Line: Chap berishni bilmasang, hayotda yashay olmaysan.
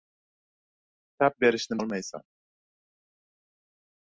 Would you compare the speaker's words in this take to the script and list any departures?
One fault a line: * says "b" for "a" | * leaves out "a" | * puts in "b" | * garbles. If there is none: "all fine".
* leaves out "bilmasang hayotda yashay"